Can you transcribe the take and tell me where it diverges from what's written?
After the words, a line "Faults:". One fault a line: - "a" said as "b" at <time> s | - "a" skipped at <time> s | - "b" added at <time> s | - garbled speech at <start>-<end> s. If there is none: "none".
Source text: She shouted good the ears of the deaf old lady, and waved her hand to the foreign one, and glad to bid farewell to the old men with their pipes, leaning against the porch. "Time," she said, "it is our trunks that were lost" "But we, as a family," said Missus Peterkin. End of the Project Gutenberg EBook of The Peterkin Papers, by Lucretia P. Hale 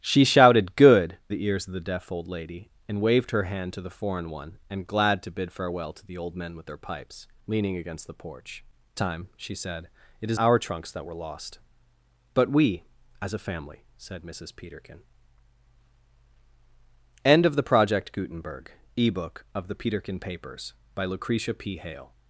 She shouted good the ears of the deaf old lady, and waved her hand to the foreign one, and glad to bid farewell to the old men with their pipes, leaning against the porch. "Time," she said, "it is our trunks that were lost" "But we, as a family," said Missus Peterkin. End of the Project Gutenberg EBook of The Peterkin Papers, by Lucretia P. Hale
Faults:
none